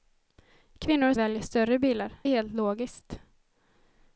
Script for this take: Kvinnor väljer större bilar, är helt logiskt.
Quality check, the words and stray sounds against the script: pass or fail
pass